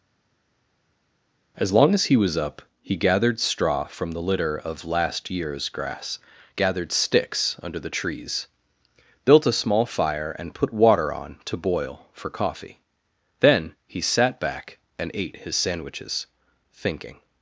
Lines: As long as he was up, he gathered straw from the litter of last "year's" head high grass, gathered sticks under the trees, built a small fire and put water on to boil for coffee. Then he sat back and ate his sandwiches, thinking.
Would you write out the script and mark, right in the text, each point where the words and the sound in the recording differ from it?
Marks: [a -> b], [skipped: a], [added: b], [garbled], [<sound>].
As long as he was up, he gathered straw from the litter of last "year's" [skipped: head high] grass, gathered sticks under the trees, built a small fire and put water on to boil for coffee. Then he sat back and ate his sandwiches, thinking.